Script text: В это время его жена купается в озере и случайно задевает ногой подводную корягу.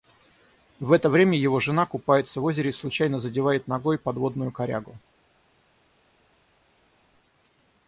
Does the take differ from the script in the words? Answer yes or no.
no